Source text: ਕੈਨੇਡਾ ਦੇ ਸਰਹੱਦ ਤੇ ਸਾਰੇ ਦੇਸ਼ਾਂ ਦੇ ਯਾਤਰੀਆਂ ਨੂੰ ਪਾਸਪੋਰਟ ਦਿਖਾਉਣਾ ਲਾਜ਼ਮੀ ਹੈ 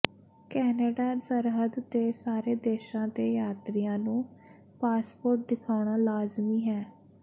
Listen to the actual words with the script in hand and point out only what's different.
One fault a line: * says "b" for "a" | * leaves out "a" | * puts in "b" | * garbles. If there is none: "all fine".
* leaves out "ਦੇ"